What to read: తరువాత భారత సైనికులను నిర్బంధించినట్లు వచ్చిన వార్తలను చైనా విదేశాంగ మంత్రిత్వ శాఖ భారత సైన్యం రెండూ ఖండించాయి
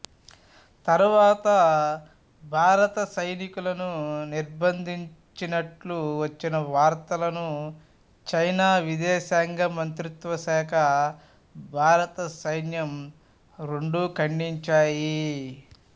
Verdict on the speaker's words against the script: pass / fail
pass